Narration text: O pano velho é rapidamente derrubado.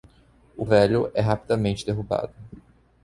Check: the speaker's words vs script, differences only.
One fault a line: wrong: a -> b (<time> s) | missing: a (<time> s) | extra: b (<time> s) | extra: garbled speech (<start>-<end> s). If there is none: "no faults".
missing: pano (0.7 s)